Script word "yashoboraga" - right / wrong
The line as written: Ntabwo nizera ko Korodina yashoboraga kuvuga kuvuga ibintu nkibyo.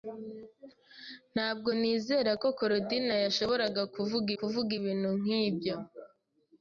right